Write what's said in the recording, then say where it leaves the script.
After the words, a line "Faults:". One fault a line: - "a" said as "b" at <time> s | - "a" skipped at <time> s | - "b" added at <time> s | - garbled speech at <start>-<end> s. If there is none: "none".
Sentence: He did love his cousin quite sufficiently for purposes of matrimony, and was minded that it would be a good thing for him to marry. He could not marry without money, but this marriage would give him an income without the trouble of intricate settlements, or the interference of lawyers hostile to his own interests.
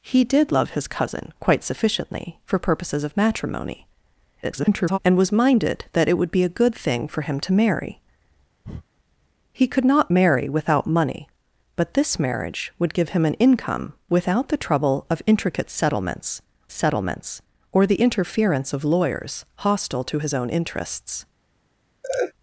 He did love his cousin quite sufficiently for purposes of matrimony, [garbled] and was minded that it would be a good thing for him to marry. He could not marry without money, but this marriage would give him an income without the trouble of intricate settlements settlements, or the interference of lawyers hostile to his own interests.
Faults:
- garbled speech at 4.4-5.0 s
- "settlements" added at 16.7 s